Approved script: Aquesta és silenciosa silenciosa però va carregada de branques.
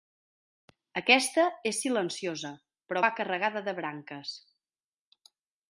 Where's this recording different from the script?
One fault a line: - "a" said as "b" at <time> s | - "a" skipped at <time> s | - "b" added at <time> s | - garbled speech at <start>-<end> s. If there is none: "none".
- "silenciosa" skipped at 2.5 s